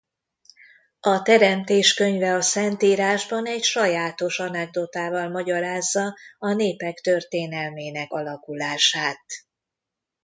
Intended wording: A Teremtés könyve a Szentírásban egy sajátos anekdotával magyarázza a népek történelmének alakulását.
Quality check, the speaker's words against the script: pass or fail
pass